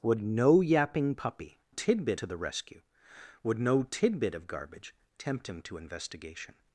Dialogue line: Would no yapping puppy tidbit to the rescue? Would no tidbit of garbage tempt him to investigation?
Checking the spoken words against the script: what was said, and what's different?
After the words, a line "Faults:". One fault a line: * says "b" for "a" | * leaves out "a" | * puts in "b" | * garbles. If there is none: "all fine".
Would no yapping puppy tidbit to the rescue? Would no tidbit of garbage tempt him to investigation?
Faults:
all fine